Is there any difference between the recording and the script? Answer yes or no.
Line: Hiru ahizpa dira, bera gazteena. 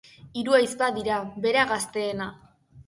no